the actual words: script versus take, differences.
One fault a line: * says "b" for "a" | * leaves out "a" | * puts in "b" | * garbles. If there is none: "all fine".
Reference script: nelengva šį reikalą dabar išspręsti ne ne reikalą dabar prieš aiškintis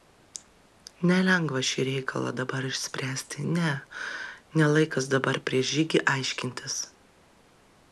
* says "laikas" for "reikalą"
* puts in "žygį"